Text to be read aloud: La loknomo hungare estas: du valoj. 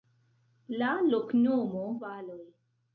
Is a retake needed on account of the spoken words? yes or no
yes